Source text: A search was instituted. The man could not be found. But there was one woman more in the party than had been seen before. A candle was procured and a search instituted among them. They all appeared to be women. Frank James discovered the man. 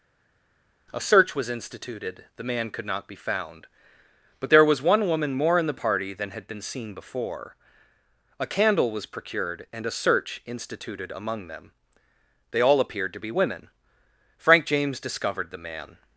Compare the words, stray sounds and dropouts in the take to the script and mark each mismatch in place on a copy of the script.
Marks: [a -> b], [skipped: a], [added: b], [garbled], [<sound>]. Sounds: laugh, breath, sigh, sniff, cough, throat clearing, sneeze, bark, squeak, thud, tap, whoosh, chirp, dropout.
A search was instituted. The man could not be found. But there was one woman more in the party than had been seen before. A candle was procured and a search instituted among them. They all appeared to be women. Frank James discovered the man.